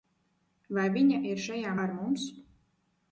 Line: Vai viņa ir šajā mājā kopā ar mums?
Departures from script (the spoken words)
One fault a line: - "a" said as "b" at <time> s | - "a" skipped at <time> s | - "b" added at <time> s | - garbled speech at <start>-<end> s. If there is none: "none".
- "mājā kopā" skipped at 1.8 s